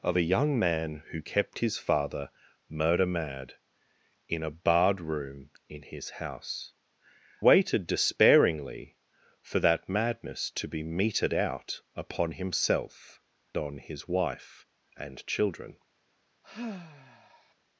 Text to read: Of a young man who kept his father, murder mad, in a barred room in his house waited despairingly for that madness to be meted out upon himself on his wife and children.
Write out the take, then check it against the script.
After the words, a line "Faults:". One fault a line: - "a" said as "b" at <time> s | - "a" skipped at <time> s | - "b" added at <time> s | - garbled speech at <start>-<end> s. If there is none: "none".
Of a young man who kept his father, murder mad, in a barred room in his house waited despairingly for that madness to be meted out upon himself on his wife and children.
Faults:
none